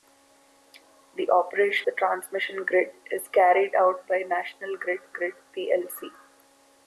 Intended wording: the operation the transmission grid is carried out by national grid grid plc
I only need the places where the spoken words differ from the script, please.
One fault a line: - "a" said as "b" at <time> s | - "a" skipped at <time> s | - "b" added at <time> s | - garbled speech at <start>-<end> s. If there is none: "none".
none